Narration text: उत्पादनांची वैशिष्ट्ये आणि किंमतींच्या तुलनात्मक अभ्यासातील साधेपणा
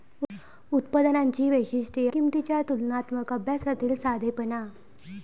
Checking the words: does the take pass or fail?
fail